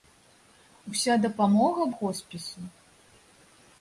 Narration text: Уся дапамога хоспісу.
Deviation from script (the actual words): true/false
false